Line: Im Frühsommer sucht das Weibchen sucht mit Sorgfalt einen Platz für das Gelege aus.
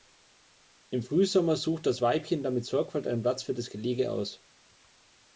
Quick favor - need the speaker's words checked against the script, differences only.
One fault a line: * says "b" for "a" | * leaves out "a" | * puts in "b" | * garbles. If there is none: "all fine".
* says "dann" for "sucht"